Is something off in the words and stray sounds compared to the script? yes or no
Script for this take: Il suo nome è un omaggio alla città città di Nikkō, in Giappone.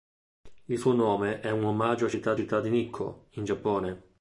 no